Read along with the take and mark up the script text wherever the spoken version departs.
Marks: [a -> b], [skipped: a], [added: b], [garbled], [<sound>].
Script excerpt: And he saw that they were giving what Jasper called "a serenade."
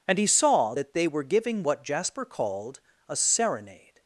And he saw that they were giving what Jasper called "a serenade."